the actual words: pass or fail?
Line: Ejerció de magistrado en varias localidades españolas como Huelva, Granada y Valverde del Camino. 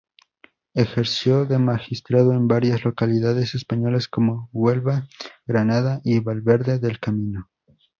pass